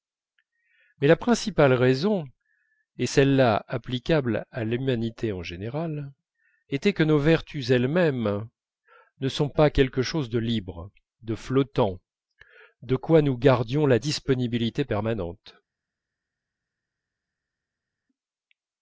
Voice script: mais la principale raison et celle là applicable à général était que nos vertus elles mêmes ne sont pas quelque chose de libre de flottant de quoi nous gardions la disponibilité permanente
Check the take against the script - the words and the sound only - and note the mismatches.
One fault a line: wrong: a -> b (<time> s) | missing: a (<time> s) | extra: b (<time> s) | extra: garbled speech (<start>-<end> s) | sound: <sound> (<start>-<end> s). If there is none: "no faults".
extra: l'humanité en (4.6 s)